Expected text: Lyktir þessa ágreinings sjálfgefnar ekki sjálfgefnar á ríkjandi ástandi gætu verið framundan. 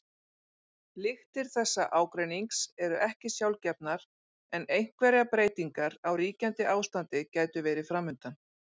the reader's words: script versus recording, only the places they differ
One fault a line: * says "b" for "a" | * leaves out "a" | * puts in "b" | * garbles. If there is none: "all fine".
* says "eru" for "sjálfgefnar"
* puts in "en einhverjar breytingar"